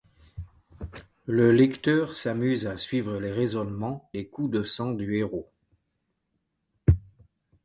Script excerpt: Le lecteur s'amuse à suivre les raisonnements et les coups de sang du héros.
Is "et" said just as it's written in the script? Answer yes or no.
no